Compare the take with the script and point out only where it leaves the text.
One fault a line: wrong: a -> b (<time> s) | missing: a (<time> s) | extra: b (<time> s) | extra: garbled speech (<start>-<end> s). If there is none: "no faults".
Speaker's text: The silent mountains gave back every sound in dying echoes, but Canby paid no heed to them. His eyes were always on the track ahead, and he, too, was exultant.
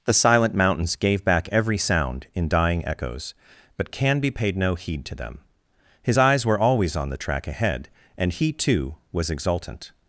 no faults